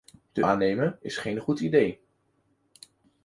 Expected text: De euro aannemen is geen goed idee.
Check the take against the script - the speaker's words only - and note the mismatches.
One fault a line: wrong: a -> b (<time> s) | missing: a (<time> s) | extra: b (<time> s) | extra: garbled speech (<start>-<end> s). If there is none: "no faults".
missing: euro (0.4 s)